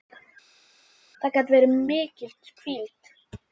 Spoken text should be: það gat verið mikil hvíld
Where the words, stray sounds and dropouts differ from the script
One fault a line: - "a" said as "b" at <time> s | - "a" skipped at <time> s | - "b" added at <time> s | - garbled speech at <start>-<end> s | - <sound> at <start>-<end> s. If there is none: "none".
none